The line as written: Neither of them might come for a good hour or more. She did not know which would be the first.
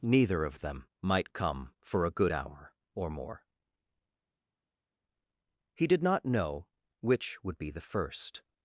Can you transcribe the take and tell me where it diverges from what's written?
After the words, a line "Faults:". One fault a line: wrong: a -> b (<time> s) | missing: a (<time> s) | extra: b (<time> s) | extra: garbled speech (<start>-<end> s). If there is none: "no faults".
Neither of them might come for a good hour or more. He did not know which would be the first.
Faults:
wrong: She -> He (5.7 s)